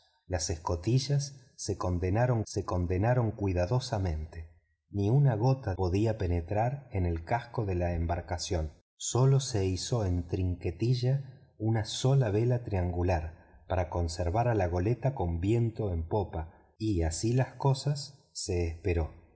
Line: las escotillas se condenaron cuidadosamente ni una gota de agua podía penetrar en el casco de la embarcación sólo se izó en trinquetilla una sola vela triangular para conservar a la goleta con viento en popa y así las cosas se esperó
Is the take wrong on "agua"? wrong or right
wrong